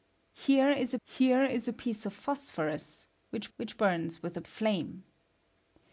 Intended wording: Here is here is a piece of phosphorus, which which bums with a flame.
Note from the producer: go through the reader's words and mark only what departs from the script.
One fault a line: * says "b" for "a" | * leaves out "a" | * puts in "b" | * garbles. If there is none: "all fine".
all fine